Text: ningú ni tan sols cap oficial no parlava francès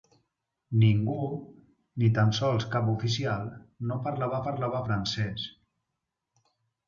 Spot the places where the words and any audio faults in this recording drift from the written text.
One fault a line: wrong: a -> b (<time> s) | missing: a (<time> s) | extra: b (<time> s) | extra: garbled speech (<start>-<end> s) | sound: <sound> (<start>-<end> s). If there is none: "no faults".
extra: parlava (4.5 s)